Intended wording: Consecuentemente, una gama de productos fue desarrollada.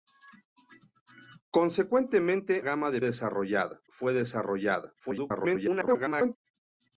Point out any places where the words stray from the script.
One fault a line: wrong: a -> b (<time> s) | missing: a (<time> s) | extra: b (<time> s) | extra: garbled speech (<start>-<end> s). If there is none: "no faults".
missing: una (2.6 s)
wrong: productos -> desarrollada (3.0 s)
extra: garbled speech (5.0-6.4 s)